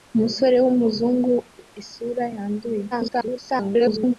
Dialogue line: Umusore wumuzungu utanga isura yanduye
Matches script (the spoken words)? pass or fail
fail